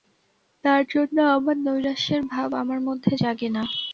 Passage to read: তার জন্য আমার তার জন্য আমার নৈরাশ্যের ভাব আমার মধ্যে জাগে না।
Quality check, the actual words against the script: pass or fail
fail